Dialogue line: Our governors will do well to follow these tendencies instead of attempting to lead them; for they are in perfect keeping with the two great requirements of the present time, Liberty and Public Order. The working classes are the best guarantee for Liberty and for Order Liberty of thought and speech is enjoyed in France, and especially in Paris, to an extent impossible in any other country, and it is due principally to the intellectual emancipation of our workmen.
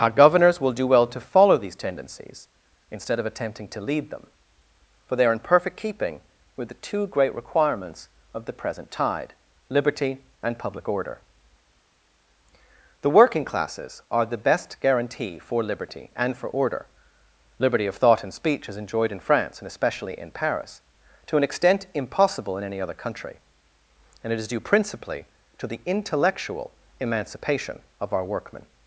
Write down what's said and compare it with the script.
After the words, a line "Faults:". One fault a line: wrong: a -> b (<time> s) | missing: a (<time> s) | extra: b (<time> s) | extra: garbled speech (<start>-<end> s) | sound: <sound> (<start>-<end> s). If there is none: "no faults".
Our governors will do well to follow these tendencies instead of attempting to lead them; for they are in perfect keeping with the two great requirements of the present tide, Liberty and Public Order. The working classes are the best guarantee for Liberty and for Order Liberty of thought and speech is enjoyed in France, and especially in Paris, to an extent impossible in any other country, and it is due principally to the intellectual emancipation of our workmen.
Faults:
wrong: time -> tide (8.9 s)